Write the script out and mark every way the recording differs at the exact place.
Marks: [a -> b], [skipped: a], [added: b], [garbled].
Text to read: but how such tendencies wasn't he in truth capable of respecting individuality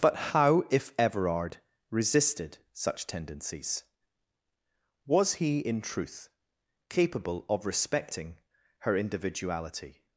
but how [added: if everard resisted] such tendencies [wasn't -> was] he in truth capable of respecting [added: her] individuality